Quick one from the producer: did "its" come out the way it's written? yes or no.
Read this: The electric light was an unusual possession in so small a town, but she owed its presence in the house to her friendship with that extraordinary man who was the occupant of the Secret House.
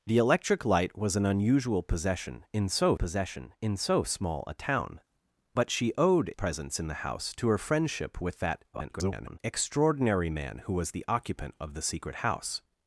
no